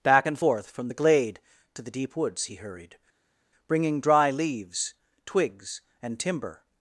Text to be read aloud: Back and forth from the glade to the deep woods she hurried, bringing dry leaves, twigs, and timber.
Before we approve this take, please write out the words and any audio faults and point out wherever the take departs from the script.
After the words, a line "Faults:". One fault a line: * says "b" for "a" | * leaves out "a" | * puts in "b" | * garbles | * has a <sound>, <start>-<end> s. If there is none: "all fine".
Back and forth from the glade to the deep woods he hurried, bringing dry leaves, twigs, and timber.
Faults:
* says "he" for "she"